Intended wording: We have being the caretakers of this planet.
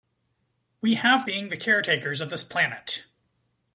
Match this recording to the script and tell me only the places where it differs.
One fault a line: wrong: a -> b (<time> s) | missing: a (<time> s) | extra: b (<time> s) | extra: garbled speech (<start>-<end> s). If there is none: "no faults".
no faults